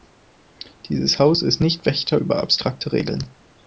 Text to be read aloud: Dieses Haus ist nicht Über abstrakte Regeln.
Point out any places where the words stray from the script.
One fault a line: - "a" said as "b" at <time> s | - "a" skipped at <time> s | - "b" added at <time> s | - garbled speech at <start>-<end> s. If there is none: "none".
- "Wächter" added at 1.9 s